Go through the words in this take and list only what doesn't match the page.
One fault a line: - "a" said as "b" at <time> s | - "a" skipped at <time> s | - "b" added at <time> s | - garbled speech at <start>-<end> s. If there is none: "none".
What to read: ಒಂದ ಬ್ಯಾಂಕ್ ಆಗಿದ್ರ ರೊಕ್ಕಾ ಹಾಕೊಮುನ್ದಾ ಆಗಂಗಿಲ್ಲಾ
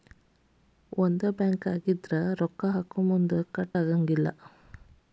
- "ಕಟ್" added at 3.5 s